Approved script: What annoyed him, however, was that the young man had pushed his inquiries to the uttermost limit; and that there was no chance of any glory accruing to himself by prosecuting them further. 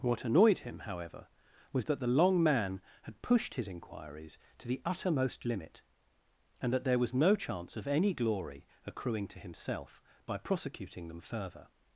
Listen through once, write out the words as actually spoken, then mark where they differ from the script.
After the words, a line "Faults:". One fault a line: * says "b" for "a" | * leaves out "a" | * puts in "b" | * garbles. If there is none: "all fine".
What annoyed him, however, was that the long man had pushed his inquiries to the uttermost limit; and that there was no chance of any glory accruing to himself by prosecuting them further.
Faults:
* says "long" for "young"